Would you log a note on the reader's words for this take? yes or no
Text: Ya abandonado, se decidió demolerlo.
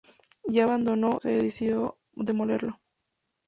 no